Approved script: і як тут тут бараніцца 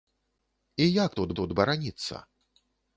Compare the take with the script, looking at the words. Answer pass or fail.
pass